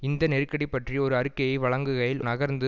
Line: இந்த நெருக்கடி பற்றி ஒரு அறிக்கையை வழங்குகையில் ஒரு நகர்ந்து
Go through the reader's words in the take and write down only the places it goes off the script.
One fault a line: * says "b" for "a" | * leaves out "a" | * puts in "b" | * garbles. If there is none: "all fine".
* leaves out "ஒரு"